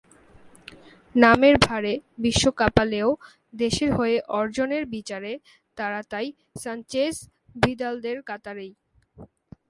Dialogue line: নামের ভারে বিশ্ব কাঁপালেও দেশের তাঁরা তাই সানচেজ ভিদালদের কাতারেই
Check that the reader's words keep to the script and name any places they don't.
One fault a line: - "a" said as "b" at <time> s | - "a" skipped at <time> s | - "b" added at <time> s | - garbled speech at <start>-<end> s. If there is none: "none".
- "হয়ে অর্জনের বিচারে" added at 3.9 s